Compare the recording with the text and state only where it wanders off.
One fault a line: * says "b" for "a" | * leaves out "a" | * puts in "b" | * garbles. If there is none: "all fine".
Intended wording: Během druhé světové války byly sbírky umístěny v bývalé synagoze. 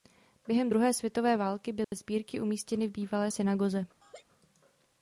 all fine